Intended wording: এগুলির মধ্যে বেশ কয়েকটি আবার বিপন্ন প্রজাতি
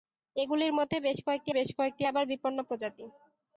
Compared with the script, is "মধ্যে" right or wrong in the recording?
right